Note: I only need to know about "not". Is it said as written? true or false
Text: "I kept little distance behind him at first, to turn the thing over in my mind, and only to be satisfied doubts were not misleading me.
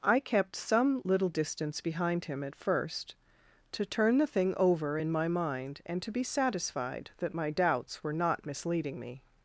true